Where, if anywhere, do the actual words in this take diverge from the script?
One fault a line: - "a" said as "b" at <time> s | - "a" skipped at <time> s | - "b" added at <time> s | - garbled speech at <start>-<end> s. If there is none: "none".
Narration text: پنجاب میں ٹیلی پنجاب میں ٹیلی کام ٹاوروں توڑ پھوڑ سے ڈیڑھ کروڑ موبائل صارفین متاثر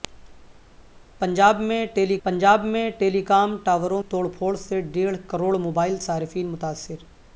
none